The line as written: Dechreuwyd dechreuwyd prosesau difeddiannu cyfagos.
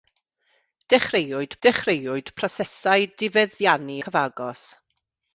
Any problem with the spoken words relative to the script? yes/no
no